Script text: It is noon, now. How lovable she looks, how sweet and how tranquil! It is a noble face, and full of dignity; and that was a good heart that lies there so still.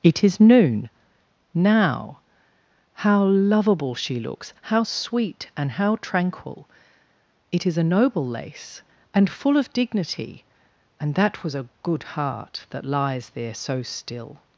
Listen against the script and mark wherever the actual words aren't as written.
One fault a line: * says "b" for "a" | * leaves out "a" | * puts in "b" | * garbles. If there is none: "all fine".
* says "lace" for "face"